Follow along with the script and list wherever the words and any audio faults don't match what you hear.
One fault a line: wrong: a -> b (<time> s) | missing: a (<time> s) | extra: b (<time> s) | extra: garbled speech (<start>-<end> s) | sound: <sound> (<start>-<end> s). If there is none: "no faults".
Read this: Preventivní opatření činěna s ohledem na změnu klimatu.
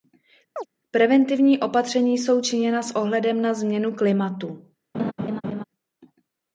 sound: chirp (0.6-0.7 s)
extra: jsou (2.2 s)
sound: laugh (4.9-5.6 s)